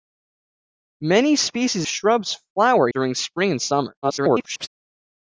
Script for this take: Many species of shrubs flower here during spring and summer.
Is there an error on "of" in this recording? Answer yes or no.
yes